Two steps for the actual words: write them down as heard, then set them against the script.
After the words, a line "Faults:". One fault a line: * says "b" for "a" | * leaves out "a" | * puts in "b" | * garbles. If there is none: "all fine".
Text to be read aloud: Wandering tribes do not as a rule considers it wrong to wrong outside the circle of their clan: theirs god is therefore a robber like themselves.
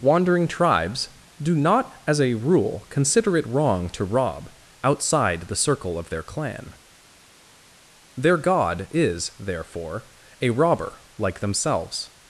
Wandering tribes do not as a rule consider it wrong to rob outside the circle of their clan: their god is therefore a robber like themselves.
Faults:
* says "consider" for "considers"
* says "rob" for "wrong"
* says "their" for "theirs"